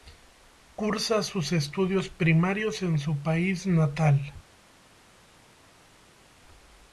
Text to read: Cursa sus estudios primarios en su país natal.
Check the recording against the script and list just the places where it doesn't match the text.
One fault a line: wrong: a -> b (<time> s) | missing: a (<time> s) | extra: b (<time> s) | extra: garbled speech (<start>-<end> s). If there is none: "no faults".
no faults